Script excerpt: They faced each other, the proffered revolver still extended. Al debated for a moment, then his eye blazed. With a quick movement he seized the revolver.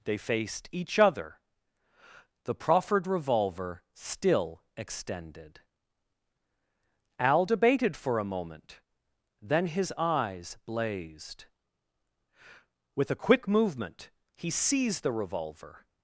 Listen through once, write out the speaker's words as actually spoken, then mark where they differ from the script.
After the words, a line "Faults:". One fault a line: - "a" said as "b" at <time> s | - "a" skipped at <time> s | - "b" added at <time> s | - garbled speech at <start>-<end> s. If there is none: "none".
They faced each other, the proffered revolver still extended. Al debated for a moment, then his eyes blazed. With a quick movement he seized the revolver.
Faults:
- "eye" said as "eyes" at 10.0 s